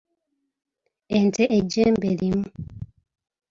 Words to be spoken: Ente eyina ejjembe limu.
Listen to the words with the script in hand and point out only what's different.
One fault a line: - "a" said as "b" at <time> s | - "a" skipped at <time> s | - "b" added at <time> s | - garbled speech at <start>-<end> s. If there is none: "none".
- "eyina" skipped at 1.4 s